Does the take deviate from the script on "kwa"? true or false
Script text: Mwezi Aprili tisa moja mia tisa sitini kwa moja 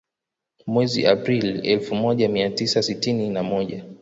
true